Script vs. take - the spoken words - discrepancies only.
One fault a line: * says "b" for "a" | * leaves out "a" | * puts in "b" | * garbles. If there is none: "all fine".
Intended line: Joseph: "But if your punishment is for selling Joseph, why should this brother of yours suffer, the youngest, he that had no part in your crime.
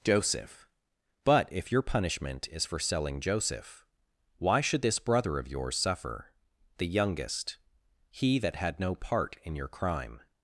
all fine